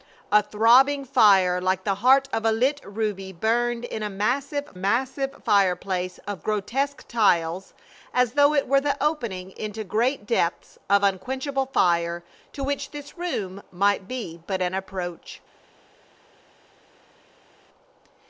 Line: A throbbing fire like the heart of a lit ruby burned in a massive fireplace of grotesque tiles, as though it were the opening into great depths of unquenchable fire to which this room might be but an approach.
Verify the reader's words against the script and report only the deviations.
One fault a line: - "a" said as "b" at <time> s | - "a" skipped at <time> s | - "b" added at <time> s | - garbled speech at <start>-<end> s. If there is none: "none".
- "massive" added at 4.7 s